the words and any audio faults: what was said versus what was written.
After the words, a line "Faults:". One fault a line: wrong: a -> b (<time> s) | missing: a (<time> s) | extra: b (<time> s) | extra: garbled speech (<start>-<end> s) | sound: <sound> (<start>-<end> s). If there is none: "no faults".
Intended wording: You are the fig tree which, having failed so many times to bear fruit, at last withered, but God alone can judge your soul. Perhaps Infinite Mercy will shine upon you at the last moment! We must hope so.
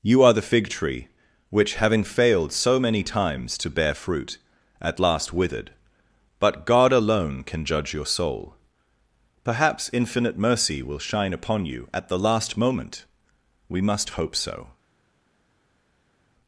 You are the fig tree which, having failed so many times to bear fruit, at last withered, but God alone can judge your soul. Perhaps Infinite Mercy will shine upon you at the last moment! We must hope so.
Faults:
no faults